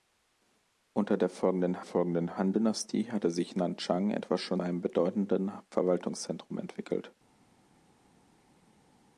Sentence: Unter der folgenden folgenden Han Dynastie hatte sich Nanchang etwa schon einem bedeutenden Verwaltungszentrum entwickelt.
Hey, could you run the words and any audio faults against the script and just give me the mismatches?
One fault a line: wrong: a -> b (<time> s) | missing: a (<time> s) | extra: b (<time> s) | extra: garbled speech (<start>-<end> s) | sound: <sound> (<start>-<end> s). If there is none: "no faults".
no faults